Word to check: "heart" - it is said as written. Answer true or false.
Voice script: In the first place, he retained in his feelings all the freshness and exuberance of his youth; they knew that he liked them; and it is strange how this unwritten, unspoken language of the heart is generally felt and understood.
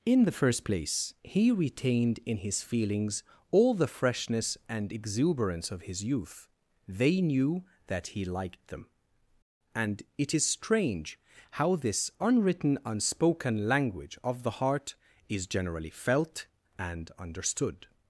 true